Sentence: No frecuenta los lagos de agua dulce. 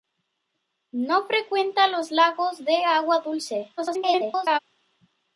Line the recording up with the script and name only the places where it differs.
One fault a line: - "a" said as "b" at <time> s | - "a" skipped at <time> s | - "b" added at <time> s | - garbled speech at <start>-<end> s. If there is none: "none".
- garbled speech at 3.8-4.6 s